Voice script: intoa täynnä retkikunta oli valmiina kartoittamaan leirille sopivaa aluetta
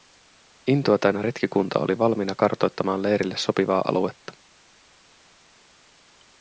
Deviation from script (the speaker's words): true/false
false